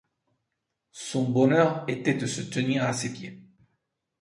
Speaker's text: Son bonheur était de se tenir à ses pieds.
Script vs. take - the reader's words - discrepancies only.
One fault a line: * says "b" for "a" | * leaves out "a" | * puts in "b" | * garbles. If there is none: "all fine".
all fine